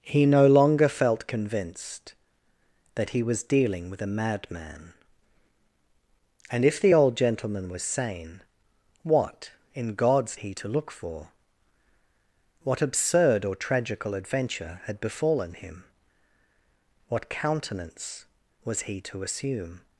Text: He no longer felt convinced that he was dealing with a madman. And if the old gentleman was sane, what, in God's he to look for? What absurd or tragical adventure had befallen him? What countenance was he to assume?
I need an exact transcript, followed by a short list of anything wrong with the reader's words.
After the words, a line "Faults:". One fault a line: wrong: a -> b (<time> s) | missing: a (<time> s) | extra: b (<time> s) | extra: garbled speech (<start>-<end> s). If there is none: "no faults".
He no longer felt convinced that he was dealing with a madman. And if the old gentleman was sane, what, in God's he to look for? What absurd or tragical adventure had befallen him? What countenance was he to assume?
Faults:
no faults